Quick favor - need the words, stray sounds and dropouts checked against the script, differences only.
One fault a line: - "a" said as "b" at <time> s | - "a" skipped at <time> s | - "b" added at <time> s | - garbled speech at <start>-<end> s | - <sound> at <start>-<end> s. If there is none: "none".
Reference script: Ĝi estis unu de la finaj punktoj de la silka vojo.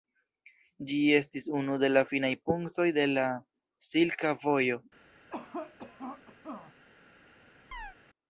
- cough at 5.3-6.7 s
- chirp at 7.7-8.0 s